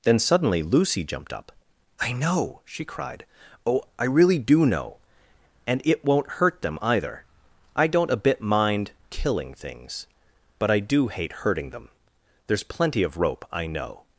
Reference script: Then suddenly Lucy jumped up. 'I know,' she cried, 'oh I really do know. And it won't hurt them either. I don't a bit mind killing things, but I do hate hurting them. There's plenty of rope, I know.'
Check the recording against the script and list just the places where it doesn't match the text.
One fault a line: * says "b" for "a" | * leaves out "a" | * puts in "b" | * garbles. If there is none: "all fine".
all fine